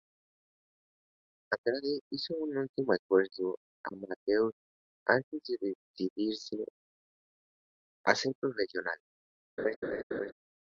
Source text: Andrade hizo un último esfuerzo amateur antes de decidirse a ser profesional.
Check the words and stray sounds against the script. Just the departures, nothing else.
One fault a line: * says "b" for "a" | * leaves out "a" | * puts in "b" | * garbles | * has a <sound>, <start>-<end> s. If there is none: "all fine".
* has a laugh, 9.6-10.3 s